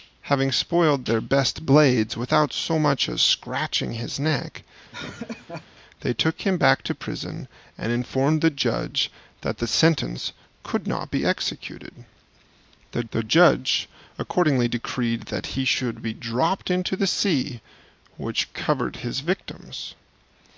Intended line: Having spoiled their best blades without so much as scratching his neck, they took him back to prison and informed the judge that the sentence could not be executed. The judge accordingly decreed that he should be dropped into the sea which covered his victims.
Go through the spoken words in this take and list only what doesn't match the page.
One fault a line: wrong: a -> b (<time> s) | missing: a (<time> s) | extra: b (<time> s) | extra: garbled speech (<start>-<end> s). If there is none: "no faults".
extra: the (13.1 s)